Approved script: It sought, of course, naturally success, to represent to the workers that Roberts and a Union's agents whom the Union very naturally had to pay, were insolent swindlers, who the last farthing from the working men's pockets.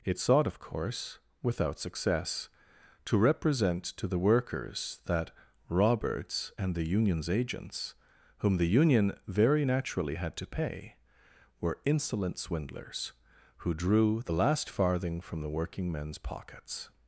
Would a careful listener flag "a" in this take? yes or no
yes